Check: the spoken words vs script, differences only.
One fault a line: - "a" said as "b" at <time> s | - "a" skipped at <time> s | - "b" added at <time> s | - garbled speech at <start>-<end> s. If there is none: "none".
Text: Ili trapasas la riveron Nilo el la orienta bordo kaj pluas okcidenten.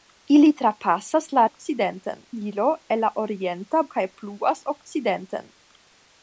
- "riveron" said as "okcidenten" at 1.5 s
- "bordo" skipped at 3.8 s